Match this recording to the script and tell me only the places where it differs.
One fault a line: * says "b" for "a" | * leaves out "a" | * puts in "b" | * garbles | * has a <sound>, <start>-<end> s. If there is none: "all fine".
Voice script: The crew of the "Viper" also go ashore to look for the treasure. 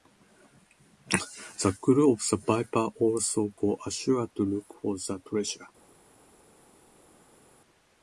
all fine